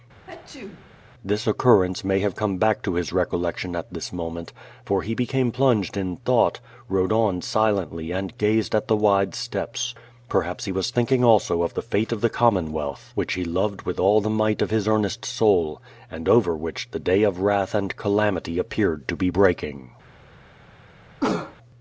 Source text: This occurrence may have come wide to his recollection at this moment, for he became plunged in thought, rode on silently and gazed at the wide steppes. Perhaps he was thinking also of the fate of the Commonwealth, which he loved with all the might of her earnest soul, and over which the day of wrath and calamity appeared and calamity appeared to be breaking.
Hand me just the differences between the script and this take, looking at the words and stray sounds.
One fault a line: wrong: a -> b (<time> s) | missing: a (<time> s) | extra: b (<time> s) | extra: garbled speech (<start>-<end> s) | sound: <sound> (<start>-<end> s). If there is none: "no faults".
sound: sneeze (0.3-0.9 s)
wrong: wide -> back (2.6 s)
wrong: her -> his (14.7 s)
missing: and calamity appeared (19.1 s)
sound: cough (21.2-21.6 s)